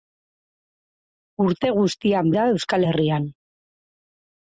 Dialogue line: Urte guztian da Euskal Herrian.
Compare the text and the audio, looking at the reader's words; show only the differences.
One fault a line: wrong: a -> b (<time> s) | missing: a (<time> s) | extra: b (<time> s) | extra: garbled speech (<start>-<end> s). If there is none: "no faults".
no faults